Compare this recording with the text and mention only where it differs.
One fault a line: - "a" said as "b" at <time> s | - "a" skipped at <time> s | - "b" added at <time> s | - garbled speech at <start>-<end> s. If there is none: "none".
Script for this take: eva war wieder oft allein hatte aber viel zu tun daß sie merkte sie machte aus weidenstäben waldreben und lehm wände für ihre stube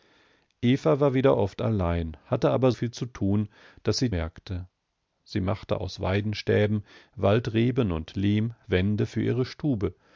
none